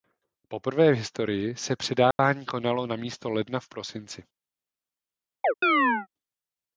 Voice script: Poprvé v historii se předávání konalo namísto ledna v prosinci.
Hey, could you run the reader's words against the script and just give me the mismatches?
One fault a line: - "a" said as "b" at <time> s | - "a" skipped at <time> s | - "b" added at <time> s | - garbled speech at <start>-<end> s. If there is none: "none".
none